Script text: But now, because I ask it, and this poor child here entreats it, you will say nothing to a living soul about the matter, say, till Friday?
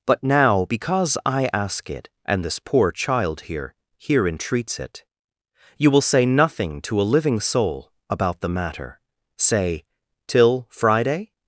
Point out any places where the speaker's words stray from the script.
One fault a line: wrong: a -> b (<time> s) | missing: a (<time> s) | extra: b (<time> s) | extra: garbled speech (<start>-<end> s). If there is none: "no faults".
extra: here (4.0 s)